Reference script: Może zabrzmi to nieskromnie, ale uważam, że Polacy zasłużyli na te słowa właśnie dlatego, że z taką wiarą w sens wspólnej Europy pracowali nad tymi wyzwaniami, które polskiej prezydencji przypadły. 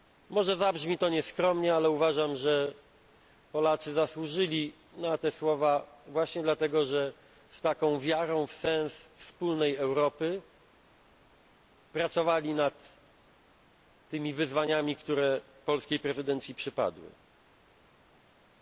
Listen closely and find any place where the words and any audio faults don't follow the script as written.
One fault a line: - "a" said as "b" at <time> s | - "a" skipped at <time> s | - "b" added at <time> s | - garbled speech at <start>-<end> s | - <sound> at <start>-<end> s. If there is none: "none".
none